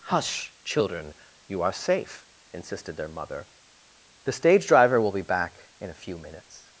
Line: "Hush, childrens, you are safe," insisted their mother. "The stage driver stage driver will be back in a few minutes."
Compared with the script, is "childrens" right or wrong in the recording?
wrong